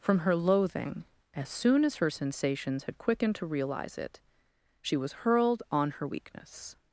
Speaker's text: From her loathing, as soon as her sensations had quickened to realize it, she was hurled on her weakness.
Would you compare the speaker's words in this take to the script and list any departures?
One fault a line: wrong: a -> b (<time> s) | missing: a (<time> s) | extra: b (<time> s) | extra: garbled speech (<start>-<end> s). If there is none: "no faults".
no faults